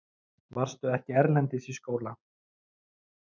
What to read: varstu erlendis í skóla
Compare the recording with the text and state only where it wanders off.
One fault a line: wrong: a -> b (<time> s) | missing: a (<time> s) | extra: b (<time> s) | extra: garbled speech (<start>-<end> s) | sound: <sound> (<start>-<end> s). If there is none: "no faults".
extra: ekki (1.0 s)